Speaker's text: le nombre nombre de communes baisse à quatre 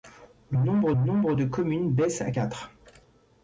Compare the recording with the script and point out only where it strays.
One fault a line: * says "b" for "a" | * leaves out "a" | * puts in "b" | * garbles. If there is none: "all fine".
all fine